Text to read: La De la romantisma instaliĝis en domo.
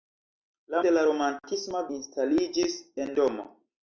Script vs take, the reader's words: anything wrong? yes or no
no